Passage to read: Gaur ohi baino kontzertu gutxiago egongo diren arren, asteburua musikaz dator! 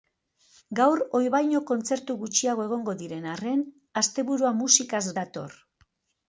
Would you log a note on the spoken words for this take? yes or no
no